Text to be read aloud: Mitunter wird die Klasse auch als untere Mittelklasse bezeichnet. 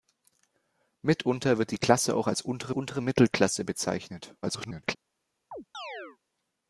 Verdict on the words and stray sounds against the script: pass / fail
fail